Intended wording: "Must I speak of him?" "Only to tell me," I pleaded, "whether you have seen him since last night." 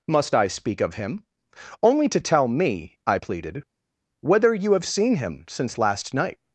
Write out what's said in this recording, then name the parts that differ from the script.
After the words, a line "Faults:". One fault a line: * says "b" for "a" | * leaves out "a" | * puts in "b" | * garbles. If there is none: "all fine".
"Must I speak of him?" "Only to tell me," I pleaded, "whether you have seen him since last night."
Faults:
all fine